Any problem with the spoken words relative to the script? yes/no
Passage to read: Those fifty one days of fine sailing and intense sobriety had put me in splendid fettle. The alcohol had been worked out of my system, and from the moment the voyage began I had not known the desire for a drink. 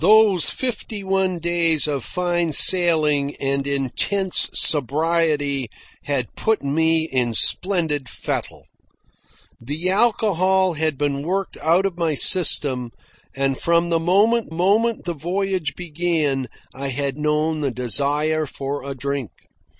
yes